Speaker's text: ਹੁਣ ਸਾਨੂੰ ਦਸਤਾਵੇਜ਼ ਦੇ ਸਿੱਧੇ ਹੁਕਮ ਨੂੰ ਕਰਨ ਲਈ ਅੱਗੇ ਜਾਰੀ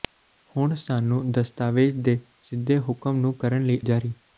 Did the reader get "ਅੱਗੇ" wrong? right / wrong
wrong